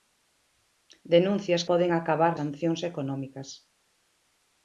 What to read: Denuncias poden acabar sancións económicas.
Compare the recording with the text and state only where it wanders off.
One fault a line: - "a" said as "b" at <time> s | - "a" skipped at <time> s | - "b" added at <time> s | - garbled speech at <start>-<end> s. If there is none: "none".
none